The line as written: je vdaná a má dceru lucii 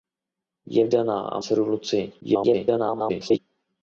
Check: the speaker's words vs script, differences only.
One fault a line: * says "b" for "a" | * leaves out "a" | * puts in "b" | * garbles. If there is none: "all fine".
* leaves out "má"
* garbles